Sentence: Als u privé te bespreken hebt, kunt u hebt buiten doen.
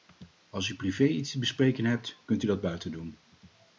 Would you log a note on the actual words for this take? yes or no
yes